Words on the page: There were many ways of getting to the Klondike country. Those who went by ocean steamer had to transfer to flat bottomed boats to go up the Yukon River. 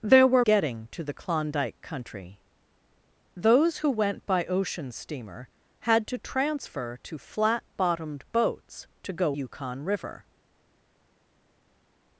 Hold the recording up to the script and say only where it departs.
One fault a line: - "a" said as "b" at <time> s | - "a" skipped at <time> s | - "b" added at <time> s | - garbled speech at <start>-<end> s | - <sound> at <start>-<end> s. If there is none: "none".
- "many ways of" skipped at 0.4 s
- "up the" skipped at 9.4 s